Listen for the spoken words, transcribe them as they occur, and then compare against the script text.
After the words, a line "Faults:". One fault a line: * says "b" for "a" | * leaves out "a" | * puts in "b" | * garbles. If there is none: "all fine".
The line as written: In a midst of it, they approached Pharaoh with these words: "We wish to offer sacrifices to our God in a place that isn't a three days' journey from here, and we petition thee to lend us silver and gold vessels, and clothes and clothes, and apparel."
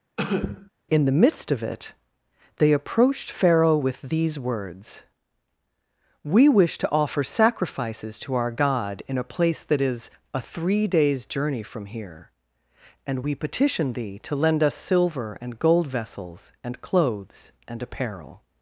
In the midst of it, they approached Pharaoh with these words: "We wish to offer sacrifices to our God in a place that is a three days' journey from here, and we petition thee to lend us silver and gold vessels, and clothes, and apparel."
Faults:
* says "the" for "a"
* says "is" for "isn't"
* leaves out "clothes and"